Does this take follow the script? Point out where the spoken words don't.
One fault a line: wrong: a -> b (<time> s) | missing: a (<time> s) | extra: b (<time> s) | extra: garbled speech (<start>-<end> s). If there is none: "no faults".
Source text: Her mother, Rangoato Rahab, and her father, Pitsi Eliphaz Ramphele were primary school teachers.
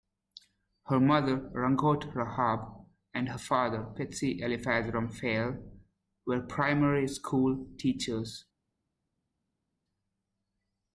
no faults